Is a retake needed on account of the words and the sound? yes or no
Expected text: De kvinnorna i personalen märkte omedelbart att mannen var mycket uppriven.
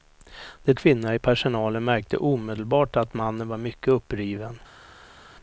no